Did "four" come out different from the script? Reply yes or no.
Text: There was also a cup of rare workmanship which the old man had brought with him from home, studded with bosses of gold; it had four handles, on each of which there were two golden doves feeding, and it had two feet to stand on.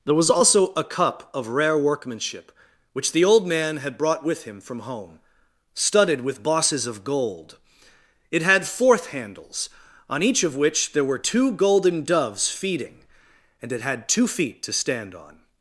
yes